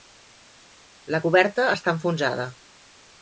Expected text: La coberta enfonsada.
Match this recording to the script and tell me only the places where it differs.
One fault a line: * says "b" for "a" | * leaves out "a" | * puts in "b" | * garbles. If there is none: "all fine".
* puts in "està"